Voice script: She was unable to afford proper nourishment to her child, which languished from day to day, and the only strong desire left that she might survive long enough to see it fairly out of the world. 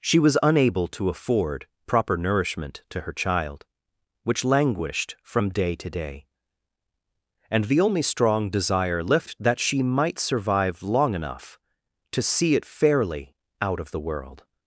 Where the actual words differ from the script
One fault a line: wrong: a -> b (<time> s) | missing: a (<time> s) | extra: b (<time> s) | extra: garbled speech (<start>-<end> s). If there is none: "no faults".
no faults